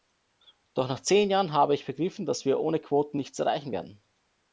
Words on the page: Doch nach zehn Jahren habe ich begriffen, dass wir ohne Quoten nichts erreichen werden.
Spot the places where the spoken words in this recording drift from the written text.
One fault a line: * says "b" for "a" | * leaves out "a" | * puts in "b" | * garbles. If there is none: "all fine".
all fine